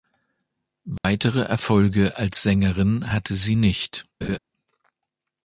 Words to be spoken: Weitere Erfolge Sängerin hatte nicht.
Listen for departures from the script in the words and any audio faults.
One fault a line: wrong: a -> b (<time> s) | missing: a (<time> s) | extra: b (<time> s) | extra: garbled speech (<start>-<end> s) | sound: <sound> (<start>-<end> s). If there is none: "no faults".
sound: dropout (1.0-1.0 s)
extra: als (2.2 s)
extra: sie (3.4 s)
sound: laugh (4.2-4.4 s)